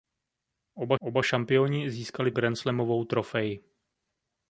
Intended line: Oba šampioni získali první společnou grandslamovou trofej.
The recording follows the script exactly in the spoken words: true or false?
false